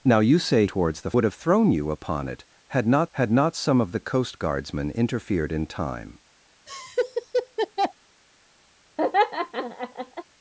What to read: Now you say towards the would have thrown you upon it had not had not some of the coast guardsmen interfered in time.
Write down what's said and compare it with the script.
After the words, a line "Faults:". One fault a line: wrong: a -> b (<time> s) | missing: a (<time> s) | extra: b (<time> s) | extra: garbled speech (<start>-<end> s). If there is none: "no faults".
Now you say towards the would have thrown you upon it had not had not some of the coast guardsmen interfered in time.
Faults:
no faults